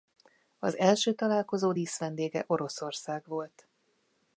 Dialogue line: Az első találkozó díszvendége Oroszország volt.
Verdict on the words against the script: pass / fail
pass